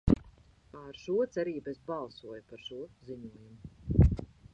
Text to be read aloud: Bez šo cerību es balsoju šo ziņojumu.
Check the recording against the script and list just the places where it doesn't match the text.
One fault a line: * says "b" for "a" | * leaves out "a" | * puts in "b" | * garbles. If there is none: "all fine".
* says "Ar" for "Bez"
* puts in "par"